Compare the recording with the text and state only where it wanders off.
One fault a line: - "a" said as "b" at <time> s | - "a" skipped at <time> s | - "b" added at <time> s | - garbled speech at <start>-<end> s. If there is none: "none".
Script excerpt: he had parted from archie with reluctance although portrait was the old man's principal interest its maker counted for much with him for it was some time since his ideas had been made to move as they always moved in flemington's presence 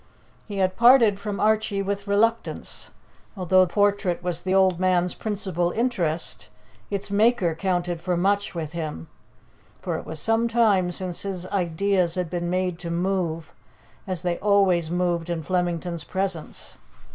none